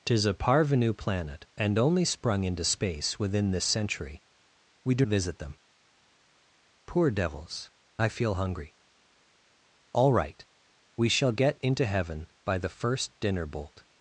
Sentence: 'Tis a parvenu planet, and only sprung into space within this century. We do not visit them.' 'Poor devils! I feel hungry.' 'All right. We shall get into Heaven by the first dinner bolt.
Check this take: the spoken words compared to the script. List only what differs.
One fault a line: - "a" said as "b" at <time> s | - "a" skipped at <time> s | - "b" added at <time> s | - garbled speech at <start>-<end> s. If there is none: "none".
- "not" skipped at 5.0 s